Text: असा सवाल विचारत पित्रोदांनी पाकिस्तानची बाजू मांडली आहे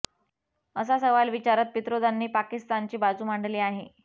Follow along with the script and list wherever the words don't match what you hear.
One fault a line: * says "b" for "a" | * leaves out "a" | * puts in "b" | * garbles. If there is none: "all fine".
all fine